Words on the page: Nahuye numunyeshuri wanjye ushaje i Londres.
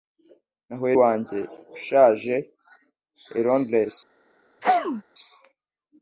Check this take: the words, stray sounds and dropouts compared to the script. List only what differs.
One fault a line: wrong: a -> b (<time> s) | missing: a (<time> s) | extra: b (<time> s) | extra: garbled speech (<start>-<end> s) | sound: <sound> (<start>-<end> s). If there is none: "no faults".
missing: numunyeshuri (0.9 s)
sound: sneeze (4.6-5.0 s)